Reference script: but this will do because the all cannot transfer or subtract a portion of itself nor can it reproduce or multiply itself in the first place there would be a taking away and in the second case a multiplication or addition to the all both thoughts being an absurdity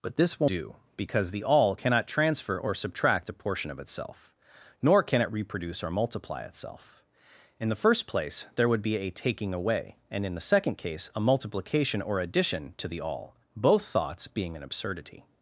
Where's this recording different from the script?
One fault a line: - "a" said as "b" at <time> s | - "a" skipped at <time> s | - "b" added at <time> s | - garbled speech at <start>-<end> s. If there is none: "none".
none